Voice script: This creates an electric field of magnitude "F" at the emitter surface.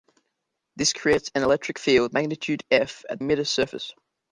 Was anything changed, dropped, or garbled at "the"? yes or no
yes